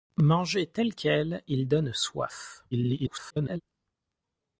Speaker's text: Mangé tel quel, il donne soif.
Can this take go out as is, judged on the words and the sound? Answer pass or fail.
fail